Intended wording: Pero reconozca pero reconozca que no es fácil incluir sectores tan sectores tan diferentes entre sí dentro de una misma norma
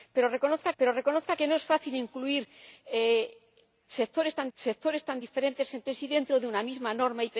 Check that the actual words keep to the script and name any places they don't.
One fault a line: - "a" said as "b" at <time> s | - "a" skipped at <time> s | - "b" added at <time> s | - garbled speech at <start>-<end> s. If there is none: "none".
none